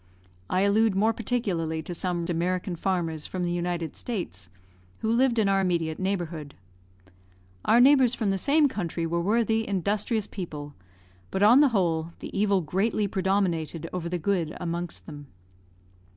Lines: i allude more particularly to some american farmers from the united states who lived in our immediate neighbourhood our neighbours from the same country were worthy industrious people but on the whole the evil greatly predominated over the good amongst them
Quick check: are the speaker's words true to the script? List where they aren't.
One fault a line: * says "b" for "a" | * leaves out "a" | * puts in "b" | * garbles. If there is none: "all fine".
all fine